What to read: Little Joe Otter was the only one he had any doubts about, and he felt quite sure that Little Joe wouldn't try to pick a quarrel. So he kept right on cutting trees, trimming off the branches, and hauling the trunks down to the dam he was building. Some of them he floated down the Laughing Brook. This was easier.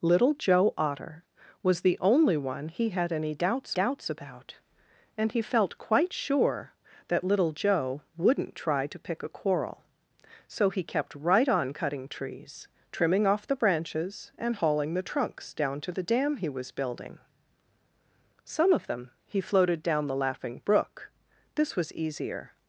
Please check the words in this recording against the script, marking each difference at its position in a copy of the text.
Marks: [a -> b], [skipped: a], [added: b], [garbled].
Little Joe Otter was the only one he had any doubts [added: doubts] about, and he felt quite sure that Little Joe wouldn't try to pick a quarrel. So he kept right on cutting trees, trimming off the branches, and hauling the trunks down to the dam he was building. Some of them he floated down the Laughing Brook. This was easier.